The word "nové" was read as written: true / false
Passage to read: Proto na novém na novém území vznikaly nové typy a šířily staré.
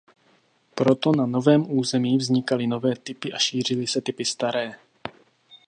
true